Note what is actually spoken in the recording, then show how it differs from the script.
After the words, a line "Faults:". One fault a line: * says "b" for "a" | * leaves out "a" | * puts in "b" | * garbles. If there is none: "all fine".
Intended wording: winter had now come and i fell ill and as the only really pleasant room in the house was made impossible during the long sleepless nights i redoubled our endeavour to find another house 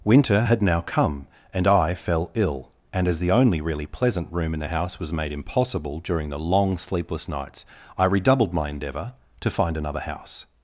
winter had now come and i fell ill and as the only really pleasant room in the house was made impossible during the long sleepless nights i redoubled my endeavour to find another house
Faults:
* says "my" for "our"